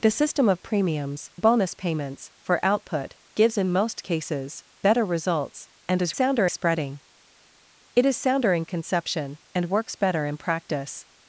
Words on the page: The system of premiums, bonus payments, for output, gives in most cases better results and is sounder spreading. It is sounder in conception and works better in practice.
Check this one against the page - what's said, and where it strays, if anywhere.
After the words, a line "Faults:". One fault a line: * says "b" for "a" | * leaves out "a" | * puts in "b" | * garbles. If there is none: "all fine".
The system of premiums, bonus payments, for output, gives in most cases better results and is sounder spreading. It is sounder in conception and works better in practice.
Faults:
all fine